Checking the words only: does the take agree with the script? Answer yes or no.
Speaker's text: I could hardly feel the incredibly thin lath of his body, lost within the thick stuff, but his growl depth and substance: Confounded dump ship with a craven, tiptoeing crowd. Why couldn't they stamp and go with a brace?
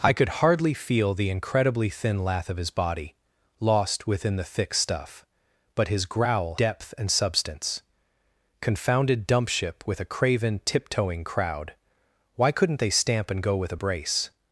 yes